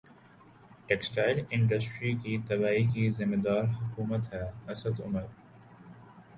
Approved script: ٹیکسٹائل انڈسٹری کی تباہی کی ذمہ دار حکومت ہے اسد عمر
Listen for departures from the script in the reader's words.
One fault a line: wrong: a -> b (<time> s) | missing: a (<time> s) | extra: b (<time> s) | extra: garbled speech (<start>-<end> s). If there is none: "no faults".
no faults